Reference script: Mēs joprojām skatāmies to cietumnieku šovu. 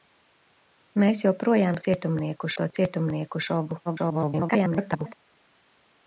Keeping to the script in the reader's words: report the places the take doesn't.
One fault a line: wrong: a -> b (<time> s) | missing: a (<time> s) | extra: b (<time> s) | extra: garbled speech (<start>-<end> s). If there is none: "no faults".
wrong: skatāmies -> cietumnieku (1.9 s)
extra: garbled speech (3.9-5.1 s)